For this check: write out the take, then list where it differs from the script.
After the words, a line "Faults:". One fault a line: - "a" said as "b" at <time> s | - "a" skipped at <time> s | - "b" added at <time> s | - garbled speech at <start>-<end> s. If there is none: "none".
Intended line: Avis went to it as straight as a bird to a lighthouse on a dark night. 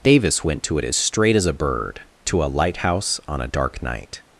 Davis went to it as straight as a bird to a lighthouse on a dark night.
Faults:
- "Avis" said as "Davis" at 0.0 s